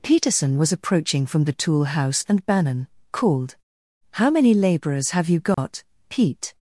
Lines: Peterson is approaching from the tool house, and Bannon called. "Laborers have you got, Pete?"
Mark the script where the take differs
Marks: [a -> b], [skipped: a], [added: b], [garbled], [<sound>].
Peterson [is -> was] approaching from the tool house, and Bannon called. [added: How many] "Laborers have you got, [dropout] Pete?"